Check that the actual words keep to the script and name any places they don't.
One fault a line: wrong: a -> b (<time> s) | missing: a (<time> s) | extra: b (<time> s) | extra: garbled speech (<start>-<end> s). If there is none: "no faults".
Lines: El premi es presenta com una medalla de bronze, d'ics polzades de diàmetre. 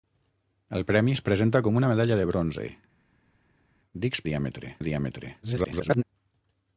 wrong: polzades -> diàmetre (4.3 s)
extra: garbled speech (5.4-6.0 s)